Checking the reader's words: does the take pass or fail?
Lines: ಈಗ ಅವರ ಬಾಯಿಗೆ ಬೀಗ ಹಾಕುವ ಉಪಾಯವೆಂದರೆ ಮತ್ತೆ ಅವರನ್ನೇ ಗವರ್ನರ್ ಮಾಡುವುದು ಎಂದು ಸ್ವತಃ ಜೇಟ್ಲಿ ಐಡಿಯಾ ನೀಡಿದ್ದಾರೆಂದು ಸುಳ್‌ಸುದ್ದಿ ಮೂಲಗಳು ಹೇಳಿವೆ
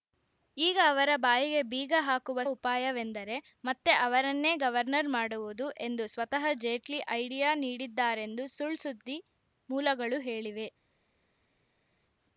pass